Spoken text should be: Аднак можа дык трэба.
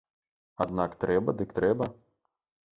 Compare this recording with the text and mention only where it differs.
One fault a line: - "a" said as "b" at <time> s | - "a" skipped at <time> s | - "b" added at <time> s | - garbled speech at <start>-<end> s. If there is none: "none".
- "можа" said as "трэба" at 1.1 s